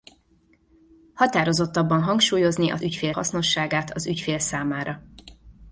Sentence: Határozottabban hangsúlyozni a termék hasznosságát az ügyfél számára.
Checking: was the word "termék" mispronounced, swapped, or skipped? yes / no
yes